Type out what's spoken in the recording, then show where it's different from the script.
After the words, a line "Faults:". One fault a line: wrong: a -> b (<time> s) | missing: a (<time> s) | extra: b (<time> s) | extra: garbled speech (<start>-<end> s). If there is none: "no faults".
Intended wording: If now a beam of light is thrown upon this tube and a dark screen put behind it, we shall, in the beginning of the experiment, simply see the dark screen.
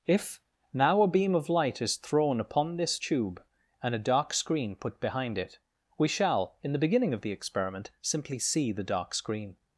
If now a beam of light is thrown upon this tube and a dark screen put behind it, we shall, in the beginning of the experiment, simply see the dark screen.
Faults:
no faults